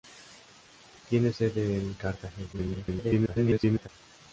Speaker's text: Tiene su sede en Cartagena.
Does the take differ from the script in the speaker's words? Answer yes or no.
yes